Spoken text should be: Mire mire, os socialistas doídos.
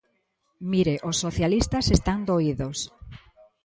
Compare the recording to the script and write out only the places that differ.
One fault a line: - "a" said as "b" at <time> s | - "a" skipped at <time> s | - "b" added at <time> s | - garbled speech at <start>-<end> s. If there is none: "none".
- "mire" skipped at 0.9 s
- "están" added at 1.9 s